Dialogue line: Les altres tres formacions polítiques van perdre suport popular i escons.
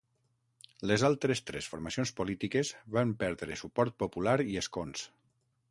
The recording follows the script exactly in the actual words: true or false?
true